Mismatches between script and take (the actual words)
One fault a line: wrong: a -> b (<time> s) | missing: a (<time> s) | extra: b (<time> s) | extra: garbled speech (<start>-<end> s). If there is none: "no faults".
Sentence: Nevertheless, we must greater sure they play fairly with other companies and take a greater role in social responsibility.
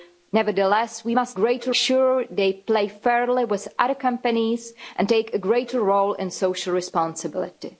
no faults